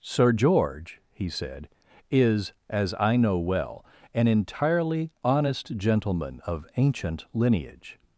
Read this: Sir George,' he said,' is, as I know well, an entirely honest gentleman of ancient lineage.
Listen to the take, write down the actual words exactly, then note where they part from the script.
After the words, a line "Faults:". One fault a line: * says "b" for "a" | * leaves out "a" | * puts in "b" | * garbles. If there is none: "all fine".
Sir George,' he said,' is, as I know well, an entirely honest gentleman of ancient lineage.
Faults:
all fine